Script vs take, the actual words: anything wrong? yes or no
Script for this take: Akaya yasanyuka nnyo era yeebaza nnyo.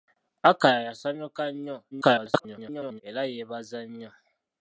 yes